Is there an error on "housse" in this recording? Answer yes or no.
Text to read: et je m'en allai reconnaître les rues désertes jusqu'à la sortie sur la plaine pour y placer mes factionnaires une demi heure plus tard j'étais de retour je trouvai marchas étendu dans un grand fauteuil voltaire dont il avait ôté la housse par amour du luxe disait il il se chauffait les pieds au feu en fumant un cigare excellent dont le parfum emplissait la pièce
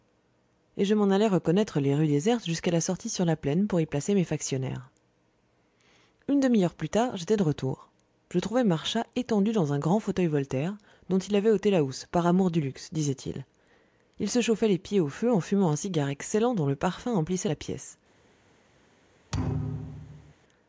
no